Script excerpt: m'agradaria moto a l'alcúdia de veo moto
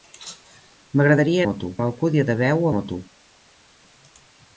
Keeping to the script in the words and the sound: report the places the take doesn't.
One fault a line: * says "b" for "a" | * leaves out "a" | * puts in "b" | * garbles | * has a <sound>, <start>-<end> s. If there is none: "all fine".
all fine